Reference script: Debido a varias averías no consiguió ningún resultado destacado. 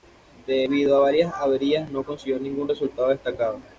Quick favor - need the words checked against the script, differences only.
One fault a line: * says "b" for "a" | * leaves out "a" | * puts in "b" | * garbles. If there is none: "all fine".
all fine